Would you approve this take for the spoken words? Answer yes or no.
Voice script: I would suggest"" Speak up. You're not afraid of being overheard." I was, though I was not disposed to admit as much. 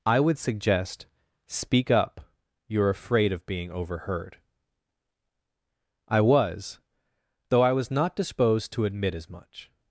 no